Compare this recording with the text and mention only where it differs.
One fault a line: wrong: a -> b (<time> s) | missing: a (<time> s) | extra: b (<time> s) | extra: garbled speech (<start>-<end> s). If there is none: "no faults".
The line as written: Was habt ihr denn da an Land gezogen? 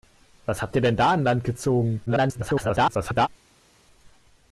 extra: garbled speech (2.1-3.3 s)